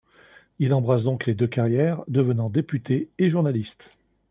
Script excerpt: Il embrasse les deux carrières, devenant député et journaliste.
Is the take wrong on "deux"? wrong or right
right